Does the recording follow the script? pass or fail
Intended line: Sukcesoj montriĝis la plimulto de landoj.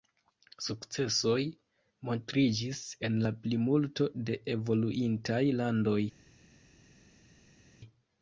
fail